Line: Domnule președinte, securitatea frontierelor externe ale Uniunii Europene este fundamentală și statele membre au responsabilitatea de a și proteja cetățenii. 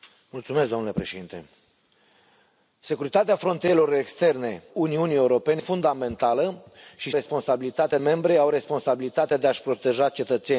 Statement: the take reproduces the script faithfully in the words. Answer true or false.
false